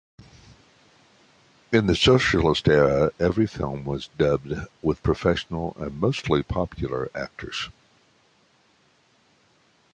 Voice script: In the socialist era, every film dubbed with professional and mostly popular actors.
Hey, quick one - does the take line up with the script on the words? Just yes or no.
no